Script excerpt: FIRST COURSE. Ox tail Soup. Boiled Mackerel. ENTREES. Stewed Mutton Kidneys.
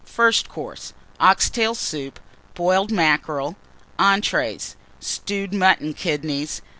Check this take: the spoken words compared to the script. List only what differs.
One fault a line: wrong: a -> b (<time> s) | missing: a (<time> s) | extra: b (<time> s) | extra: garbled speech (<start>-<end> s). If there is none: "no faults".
no faults